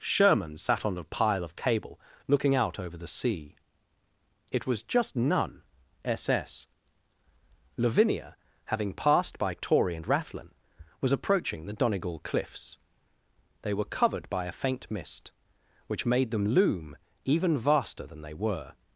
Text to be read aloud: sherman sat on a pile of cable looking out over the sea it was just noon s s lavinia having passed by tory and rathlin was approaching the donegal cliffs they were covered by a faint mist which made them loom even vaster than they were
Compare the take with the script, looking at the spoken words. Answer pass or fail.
fail